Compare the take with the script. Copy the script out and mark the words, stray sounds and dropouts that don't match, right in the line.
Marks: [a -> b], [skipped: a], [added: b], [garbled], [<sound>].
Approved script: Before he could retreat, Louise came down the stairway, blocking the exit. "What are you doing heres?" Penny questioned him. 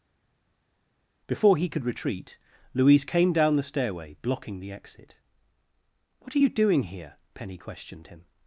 Before he could retreat, Louise came down the stairway, blocking the exit. "What are you doing [heres?" -> here] Penny questioned him.